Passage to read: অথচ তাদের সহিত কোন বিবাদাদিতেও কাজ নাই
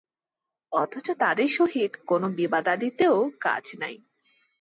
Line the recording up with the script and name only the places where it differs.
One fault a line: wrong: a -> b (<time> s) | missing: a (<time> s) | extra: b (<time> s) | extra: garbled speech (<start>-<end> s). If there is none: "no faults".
no faults